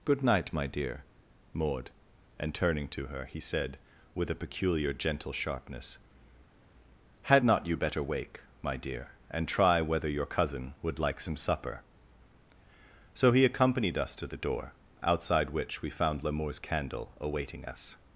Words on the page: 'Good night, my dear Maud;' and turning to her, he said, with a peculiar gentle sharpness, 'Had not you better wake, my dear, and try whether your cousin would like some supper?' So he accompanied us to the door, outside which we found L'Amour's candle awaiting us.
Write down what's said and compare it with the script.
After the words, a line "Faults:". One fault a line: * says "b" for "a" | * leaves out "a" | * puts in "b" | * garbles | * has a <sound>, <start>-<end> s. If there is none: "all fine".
'Good night, my dear Maud;' and turning to her, he said, with a peculiar gentle sharpness, 'Had not you better wake, my dear, and try whether your cousin would like some supper?' So he accompanied us to the door, outside which we found L'Amour's candle awaiting us.
Faults:
all fine